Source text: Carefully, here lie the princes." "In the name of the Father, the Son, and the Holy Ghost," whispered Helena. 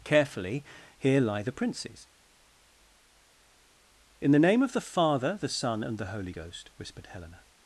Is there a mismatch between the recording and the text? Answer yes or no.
no